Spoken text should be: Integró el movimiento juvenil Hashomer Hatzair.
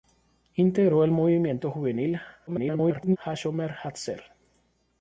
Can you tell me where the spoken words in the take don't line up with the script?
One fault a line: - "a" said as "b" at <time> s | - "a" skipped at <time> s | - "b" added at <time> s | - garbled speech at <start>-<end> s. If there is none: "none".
- garbled speech at 2.5-3.2 s